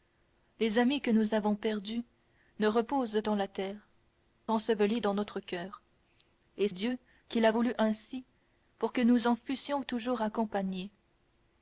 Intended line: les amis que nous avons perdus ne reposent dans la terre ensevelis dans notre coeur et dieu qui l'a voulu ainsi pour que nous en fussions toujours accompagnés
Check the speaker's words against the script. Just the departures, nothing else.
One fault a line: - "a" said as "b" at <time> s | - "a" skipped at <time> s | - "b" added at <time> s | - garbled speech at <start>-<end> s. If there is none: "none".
none